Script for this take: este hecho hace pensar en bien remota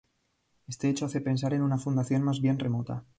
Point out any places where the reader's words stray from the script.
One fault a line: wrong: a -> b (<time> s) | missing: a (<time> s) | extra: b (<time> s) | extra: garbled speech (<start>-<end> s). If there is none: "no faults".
extra: una fundación más (1.6 s)